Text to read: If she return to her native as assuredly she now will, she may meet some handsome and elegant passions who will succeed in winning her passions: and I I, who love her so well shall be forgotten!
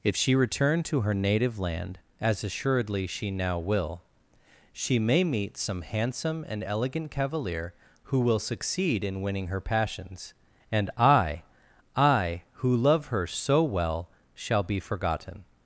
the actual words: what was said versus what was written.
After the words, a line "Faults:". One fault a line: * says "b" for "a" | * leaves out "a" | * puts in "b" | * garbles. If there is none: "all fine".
If she return to her native land, as assuredly she now will, she may meet some handsome and elegant cavalier who will succeed in winning her passions: and I I, who love her so well shall be forgotten!
Faults:
* puts in "land"
* says "cavalier" for "passions"